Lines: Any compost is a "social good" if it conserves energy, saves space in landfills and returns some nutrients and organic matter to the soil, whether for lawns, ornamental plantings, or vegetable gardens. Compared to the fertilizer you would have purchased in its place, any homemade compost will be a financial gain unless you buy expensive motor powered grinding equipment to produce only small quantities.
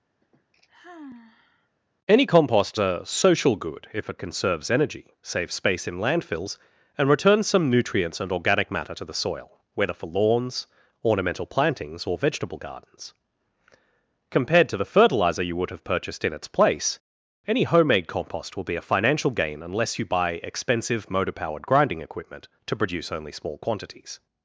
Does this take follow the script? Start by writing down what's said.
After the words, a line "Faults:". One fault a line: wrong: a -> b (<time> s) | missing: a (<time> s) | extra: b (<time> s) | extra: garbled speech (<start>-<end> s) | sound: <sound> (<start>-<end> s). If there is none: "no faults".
Any compost a "social good" if it conserves energy, saves space in landfills and returns some nutrients and organic matter to the soil, whether for lawns, ornamental plantings, or vegetable gardens. Compared to the fertilizer you would have purchased in its place, any homemade compost will be a financial gain unless you buy expensive motor powered grinding equipment to produce only small quantities.
Faults:
sound: sigh (0.2-1.7 s)
missing: is (2.8 s)